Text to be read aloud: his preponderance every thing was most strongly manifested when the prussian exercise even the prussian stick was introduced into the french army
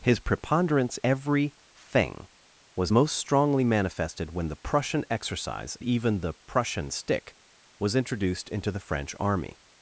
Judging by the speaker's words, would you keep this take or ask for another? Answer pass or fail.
pass